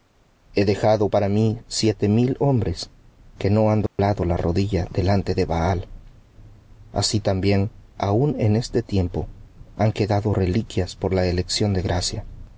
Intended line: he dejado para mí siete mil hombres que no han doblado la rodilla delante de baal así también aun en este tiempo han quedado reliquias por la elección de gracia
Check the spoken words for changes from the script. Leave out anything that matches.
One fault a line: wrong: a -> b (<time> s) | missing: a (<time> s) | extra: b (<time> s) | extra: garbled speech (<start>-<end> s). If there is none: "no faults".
no faults